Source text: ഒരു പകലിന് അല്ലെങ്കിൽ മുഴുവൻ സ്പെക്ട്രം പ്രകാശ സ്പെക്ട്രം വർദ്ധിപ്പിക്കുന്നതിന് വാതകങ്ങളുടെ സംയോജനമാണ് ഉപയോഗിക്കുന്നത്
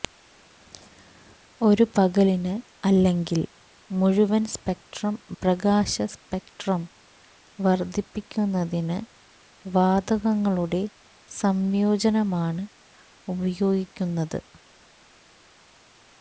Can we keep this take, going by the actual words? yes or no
yes